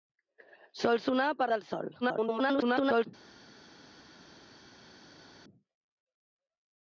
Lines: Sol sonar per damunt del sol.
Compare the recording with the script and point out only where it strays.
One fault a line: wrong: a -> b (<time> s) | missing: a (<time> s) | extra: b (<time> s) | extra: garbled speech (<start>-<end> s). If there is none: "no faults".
missing: damunt (1.5 s)
extra: garbled speech (2.0-3.1 s)